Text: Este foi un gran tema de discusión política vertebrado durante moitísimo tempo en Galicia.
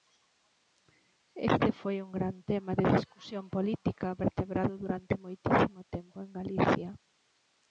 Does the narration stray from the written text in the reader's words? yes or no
no